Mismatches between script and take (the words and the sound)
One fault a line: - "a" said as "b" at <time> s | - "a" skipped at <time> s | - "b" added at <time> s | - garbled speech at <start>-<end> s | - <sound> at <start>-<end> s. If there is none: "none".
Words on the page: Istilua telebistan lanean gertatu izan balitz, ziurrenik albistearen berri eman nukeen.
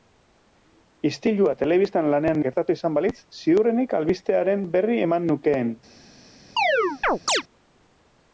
- chirp at 6.6-7.4 s